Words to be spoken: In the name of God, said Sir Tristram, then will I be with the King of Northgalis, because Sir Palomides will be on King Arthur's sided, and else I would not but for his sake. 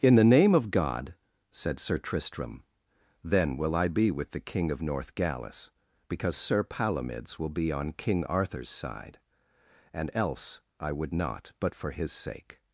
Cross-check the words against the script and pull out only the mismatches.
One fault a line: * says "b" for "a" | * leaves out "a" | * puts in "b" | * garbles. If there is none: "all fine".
* says "side" for "sided"